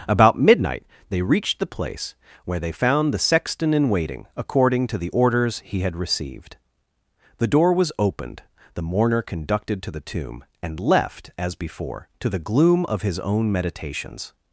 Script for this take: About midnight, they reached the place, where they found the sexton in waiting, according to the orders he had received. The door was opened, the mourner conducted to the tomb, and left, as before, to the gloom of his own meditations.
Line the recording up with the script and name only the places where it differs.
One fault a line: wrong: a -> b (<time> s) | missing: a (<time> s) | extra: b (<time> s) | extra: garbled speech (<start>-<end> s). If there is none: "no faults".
no faults